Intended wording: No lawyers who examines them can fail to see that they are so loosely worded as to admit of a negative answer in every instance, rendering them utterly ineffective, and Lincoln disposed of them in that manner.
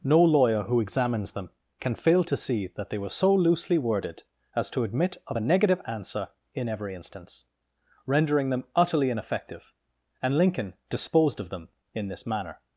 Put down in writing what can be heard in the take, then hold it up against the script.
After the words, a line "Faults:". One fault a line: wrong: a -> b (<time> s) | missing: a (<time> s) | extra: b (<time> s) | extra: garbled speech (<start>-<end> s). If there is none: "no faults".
No lawyer who examines them can fail to see that they were so loosely worded as to admit of a negative answer in every instance, rendering them utterly ineffective, and Lincoln disposed of them in this manner.
Faults:
wrong: lawyers -> lawyer (0.2 s)
wrong: are -> were (3.0 s)
wrong: that -> this (12.1 s)